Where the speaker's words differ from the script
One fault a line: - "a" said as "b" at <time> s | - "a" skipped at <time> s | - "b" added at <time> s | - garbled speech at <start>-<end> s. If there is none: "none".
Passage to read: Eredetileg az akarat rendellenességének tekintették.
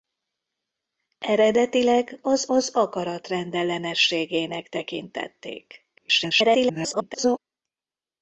- "az" added at 2.4 s
- garbled speech at 6.0-7.4 s